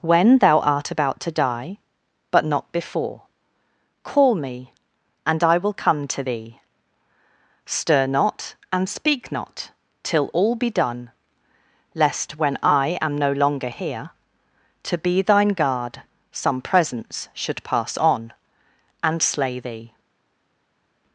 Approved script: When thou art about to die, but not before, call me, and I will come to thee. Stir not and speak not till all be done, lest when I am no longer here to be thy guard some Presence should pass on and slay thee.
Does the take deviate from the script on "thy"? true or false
true